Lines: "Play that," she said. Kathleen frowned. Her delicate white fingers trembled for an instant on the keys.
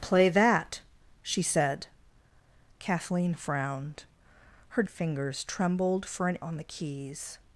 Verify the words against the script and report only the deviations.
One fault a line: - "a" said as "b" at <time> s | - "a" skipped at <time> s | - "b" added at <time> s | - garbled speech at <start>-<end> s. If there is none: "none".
- "delicate white" skipped at 4.8 s
- "instant" skipped at 6.4 s